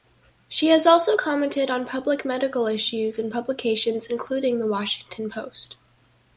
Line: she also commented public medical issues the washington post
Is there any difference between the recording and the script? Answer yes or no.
yes